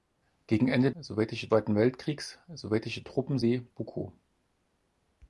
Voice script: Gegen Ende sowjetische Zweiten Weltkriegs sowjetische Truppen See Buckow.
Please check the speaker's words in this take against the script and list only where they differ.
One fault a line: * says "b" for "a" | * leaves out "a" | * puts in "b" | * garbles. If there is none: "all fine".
all fine